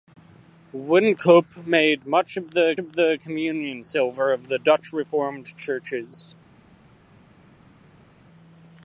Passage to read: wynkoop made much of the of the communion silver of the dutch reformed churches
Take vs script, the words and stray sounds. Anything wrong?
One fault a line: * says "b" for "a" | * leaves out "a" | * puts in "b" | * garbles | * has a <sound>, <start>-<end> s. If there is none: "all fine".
all fine